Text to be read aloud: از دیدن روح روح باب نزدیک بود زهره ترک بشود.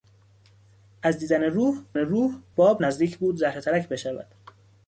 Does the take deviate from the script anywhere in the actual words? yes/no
no